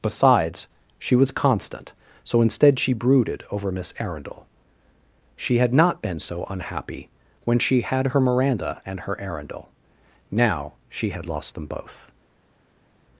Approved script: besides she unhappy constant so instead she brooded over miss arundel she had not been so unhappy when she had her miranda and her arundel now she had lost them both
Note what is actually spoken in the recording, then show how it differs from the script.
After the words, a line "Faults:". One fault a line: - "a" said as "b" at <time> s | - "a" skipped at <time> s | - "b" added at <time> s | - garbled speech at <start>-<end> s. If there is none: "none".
besides she was constant so instead she brooded over miss arundel she had not been so unhappy when she had her miranda and her arundel now she had lost them both
Faults:
- "unhappy" said as "was" at 1.1 s